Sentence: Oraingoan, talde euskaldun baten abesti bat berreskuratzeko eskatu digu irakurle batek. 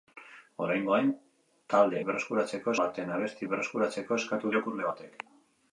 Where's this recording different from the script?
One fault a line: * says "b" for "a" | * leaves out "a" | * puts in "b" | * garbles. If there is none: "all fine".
* says "berreskuratzeko" for "euskaldun"
* leaves out "bat"
* leaves out "digu"